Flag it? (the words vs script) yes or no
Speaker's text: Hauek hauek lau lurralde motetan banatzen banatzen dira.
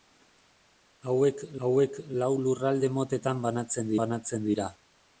no